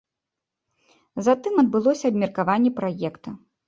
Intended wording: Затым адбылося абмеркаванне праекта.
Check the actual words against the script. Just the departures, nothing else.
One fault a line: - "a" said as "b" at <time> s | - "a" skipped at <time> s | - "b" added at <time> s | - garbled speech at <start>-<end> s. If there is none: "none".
none